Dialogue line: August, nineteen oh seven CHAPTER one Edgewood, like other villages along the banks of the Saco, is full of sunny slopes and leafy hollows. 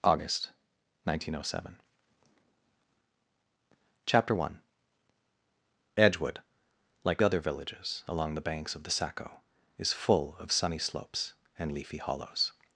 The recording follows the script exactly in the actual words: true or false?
true